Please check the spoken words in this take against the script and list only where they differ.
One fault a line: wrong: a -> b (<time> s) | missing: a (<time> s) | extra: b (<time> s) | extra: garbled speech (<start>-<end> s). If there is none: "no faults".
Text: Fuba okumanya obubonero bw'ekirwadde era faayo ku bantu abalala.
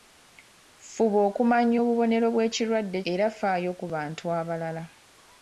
no faults